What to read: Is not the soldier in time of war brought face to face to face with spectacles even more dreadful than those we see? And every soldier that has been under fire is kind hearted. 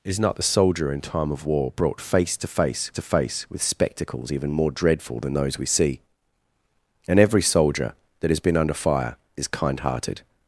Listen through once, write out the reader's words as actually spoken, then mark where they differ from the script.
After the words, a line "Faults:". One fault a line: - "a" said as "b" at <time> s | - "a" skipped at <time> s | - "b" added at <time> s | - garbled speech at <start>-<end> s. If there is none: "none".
Is not the soldier in time of war brought face to face to face with spectacles even more dreadful than those we see? And every soldier that has been under fire is kind hearted.
Faults:
none